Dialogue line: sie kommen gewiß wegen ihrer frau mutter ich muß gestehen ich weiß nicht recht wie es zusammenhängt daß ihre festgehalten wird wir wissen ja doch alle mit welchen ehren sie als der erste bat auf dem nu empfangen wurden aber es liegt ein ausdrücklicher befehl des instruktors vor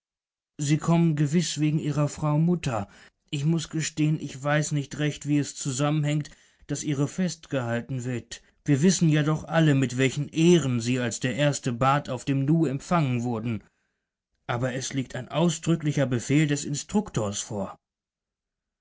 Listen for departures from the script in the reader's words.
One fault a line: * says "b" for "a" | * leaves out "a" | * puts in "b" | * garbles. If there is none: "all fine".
all fine